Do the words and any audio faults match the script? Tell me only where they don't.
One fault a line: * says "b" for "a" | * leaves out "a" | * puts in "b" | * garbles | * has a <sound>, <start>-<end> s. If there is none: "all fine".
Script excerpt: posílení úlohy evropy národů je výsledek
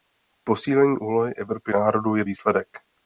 all fine